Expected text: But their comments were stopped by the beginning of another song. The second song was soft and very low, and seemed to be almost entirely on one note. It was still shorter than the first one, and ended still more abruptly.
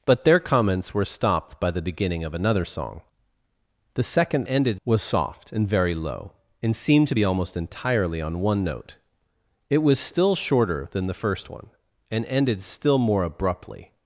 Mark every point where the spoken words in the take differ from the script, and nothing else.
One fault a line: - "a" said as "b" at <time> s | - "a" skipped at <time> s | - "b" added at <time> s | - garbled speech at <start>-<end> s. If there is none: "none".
- "song" said as "ended" at 4.4 s